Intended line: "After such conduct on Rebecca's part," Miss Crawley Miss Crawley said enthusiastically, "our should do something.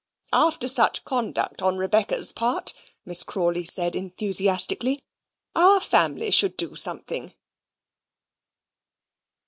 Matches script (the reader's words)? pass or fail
fail